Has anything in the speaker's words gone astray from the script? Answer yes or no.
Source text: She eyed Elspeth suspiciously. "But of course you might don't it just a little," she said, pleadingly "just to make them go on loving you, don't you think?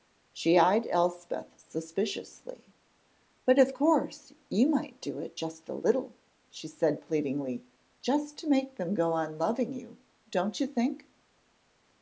yes